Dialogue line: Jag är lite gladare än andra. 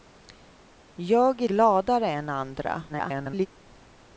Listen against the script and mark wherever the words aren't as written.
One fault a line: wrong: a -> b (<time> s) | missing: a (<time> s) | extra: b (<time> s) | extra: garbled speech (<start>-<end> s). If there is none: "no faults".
missing: lite (1.5 s)
extra: garbled speech (2.9-3.5 s)